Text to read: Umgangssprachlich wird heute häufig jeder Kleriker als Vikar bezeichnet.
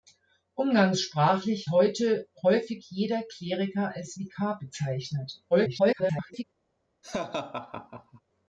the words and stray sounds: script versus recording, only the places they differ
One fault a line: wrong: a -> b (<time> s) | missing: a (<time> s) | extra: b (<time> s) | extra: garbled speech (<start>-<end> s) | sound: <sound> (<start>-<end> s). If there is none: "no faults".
missing: wird (1.7 s)
extra: garbled speech (5.5-6.4 s)
sound: laugh (7.0-8.2 s)